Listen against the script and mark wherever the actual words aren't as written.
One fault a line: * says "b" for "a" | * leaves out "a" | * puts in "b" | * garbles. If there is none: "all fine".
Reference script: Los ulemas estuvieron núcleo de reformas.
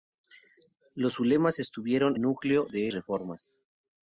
all fine